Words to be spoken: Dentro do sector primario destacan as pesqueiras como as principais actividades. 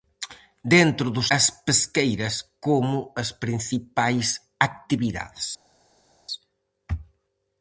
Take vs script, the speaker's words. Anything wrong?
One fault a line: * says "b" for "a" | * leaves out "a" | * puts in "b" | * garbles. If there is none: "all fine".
* leaves out "sector primario destacan"